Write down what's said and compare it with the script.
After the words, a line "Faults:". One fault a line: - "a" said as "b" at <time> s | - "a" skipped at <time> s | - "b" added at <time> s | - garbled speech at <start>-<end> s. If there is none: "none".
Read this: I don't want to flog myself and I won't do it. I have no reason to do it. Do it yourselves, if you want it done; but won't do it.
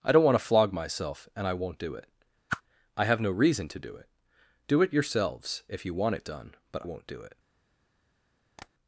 I don't want to flog myself and I won't do it. I have no reason to do it. Do it yourselves, if you want it done; but won't do it.
Faults:
none